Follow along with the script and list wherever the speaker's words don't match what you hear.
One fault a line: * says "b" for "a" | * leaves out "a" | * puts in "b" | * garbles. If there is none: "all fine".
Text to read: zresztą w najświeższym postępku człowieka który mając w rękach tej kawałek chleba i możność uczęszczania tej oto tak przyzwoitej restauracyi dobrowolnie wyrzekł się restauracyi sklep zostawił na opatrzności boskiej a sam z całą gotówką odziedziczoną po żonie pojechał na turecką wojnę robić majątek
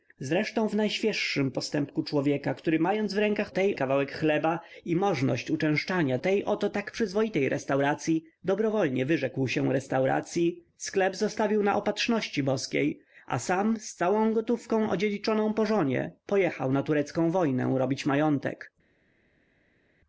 all fine